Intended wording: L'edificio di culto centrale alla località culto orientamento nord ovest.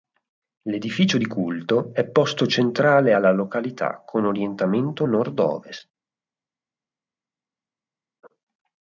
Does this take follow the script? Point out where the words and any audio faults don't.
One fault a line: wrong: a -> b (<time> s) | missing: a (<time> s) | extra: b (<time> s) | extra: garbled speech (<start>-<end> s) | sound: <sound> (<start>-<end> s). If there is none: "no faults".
extra: è posto (1.9 s)
wrong: culto -> con (4.1 s)